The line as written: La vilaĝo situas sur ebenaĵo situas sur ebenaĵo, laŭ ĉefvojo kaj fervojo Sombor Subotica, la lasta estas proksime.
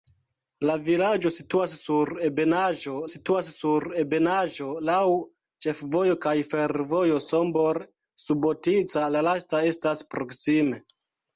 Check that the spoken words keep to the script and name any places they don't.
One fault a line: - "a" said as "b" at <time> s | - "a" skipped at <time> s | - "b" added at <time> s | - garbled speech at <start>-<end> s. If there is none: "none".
none